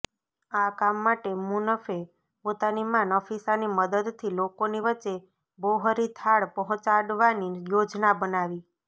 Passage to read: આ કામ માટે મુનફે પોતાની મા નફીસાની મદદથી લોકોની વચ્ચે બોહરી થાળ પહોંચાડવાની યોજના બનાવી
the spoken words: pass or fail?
pass